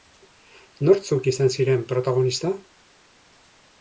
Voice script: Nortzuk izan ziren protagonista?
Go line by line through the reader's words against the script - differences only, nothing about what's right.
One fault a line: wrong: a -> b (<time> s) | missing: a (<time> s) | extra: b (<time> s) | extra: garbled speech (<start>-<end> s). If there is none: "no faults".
no faults